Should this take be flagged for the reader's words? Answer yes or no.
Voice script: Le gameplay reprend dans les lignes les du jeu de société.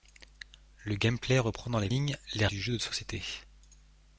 no